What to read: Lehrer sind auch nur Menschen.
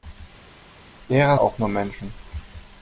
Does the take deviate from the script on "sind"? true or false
true